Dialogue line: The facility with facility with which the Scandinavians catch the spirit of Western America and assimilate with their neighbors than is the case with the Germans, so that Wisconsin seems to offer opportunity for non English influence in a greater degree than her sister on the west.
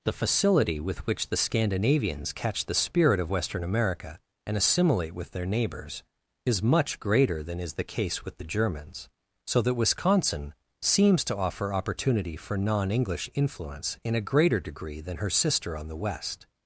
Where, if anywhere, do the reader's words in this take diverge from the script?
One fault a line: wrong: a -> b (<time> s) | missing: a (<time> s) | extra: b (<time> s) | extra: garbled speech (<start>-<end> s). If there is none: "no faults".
missing: facility with (1.1 s)
extra: is much greater (6.4 s)